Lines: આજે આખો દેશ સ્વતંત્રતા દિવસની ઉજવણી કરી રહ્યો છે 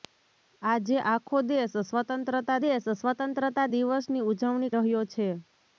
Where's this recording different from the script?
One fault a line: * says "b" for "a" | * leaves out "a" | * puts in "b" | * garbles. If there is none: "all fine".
* puts in "દેશ સ્વતંત્રતા"
* leaves out "કરી"